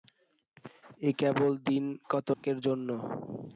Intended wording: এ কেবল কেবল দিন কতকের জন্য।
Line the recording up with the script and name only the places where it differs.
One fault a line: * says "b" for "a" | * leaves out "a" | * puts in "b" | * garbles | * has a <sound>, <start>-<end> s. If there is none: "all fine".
* leaves out "কেবল"
* has a dropout, 2.3-2.4 s